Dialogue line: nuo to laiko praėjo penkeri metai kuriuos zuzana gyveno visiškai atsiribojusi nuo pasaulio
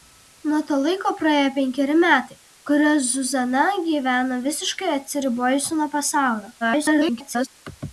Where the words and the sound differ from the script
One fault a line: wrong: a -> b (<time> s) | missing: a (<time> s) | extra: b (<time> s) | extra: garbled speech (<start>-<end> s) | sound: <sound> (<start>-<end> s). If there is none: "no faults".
extra: garbled speech (6.6-7.5 s)